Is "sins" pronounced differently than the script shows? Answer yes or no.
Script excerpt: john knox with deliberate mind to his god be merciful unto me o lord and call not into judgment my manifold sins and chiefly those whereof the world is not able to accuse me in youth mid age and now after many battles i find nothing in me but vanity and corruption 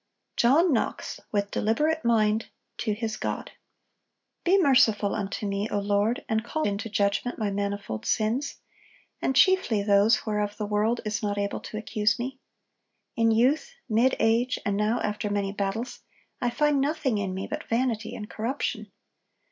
no